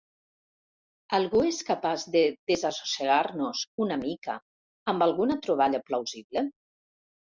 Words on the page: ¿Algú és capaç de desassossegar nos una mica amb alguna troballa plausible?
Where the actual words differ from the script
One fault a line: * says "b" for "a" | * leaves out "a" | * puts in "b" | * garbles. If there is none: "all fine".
all fine